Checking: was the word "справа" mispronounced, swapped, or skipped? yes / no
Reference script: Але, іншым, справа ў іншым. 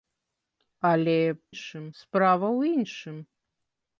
no